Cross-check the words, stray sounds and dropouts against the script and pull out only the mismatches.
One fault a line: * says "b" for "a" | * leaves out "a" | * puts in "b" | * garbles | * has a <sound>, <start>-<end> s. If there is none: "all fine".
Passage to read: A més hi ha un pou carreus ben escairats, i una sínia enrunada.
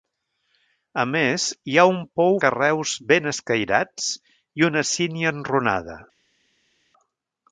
all fine